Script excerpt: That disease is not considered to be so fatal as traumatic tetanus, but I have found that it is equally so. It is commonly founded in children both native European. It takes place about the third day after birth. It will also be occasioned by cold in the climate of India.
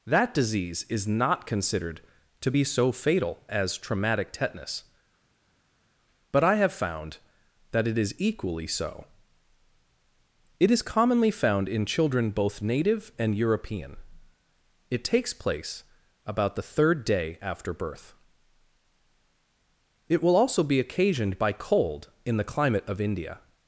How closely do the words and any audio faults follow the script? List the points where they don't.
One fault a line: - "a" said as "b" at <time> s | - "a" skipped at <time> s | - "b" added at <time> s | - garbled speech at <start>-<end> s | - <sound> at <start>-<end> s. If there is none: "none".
- "founded" said as "found" at 11.3 s
- "and" added at 13.2 s